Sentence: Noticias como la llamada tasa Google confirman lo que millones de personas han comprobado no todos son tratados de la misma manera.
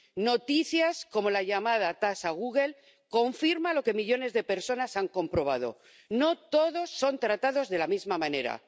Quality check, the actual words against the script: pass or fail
pass